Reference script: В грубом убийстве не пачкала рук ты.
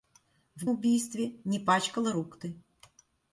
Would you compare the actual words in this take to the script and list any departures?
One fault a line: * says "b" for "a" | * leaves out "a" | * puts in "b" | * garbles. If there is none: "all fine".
* leaves out "грубом"